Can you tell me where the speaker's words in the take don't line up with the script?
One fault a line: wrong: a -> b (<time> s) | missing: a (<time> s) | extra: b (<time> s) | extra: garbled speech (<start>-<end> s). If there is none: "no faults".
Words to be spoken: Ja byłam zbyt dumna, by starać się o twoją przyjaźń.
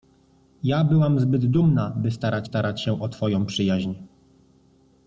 extra: starać (2.4 s)